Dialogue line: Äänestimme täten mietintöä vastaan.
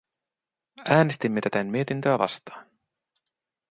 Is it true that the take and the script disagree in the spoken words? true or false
false